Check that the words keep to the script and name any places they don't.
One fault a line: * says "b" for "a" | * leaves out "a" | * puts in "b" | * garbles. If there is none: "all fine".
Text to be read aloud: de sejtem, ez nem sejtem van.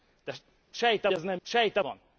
all fine